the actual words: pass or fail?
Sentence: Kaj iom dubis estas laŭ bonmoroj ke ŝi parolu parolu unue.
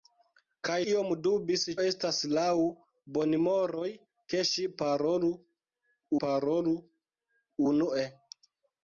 pass